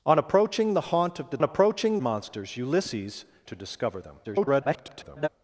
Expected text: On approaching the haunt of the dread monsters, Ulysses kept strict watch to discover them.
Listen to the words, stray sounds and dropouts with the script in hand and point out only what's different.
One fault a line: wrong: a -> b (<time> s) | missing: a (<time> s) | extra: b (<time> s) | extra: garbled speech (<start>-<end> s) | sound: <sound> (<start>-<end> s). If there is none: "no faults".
wrong: dread -> approaching (1.4 s)
missing: kept strict watch (3.3 s)
extra: garbled speech (4.2-5.3 s)